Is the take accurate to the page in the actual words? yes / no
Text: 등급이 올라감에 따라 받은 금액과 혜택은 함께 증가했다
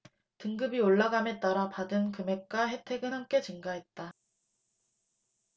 yes